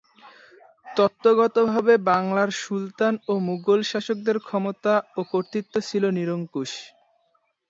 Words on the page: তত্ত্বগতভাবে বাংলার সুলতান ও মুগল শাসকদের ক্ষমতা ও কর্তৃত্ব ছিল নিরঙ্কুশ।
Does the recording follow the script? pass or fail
pass